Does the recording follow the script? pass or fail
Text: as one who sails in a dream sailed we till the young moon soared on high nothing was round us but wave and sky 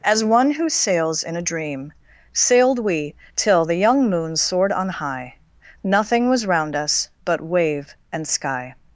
pass